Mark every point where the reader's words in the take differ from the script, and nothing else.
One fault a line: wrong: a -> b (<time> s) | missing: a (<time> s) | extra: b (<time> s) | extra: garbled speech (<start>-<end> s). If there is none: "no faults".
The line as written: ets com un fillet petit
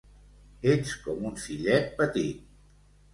no faults